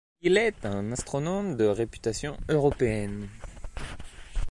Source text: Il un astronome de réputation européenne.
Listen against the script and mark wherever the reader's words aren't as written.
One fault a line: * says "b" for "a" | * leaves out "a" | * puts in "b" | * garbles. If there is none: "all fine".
* puts in "est"